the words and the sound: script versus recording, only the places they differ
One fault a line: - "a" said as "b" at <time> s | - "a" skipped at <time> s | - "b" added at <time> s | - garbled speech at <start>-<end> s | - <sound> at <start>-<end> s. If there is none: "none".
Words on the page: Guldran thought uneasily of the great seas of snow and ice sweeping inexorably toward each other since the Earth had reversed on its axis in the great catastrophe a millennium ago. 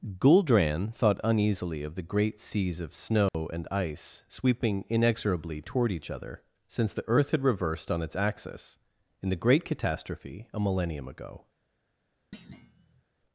- dropout at 3.3-3.3 s
- thud at 12.3-13.0 s